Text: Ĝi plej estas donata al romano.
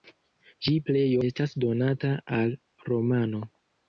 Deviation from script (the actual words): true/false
false